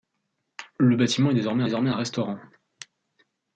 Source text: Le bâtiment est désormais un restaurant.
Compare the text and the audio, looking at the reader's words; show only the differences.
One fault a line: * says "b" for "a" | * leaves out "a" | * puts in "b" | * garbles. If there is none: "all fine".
* puts in "désormais"